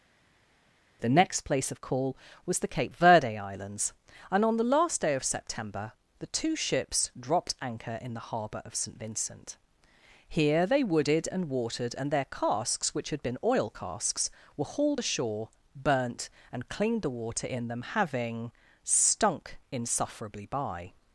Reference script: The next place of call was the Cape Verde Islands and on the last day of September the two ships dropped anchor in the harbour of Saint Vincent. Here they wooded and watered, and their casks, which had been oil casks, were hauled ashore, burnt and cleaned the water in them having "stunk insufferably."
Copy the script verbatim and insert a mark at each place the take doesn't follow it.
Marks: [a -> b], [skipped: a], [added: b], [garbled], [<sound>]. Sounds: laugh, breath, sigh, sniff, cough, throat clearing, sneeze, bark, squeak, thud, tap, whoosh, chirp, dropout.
The next place of call was the Cape Verde Islands and on the last day of September the two ships dropped anchor in the harbour of Saint Vincent. Here they wooded and watered, and their casks, which had been oil casks, were hauled ashore, burnt and cleaned the water in them having "stunk insufferably." [added: By]